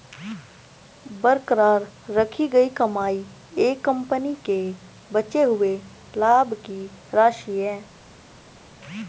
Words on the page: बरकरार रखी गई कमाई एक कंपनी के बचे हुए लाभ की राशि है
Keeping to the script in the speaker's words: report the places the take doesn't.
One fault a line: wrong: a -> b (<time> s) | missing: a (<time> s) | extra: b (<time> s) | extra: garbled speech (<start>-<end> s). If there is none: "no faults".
no faults